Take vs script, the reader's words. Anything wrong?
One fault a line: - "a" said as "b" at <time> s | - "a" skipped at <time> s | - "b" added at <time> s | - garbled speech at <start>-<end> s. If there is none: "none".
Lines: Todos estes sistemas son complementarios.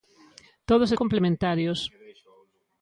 - "estes sistemas son" skipped at 0.9 s